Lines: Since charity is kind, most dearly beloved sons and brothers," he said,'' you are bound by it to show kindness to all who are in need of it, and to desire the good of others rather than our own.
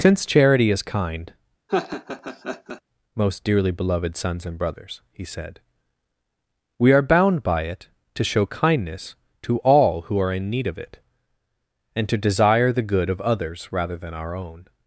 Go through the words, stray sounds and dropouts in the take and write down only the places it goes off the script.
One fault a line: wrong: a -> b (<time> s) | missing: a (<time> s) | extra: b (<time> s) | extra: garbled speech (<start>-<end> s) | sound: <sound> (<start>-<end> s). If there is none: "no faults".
sound: laugh (1.7-2.8 s)
wrong: you -> we (6.8 s)